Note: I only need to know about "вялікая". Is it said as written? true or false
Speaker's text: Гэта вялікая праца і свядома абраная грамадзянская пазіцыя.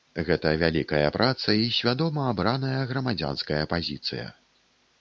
true